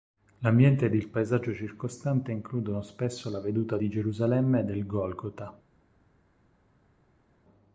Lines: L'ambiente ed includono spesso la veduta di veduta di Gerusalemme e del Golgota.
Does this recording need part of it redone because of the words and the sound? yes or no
yes